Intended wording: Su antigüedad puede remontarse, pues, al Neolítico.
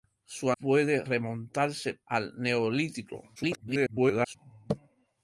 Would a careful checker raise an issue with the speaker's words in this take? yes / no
yes